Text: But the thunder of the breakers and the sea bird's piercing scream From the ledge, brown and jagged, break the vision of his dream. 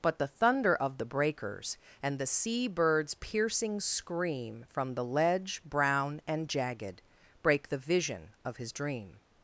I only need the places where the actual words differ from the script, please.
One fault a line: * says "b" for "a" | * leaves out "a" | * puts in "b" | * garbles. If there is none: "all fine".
all fine